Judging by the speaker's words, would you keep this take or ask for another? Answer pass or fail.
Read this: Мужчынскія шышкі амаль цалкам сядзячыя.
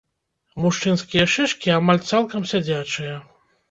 pass